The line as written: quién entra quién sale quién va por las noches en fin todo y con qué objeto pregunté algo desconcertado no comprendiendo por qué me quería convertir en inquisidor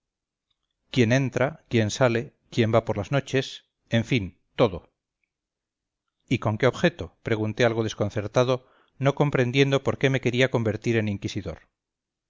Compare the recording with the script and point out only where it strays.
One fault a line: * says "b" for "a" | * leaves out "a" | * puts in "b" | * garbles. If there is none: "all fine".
all fine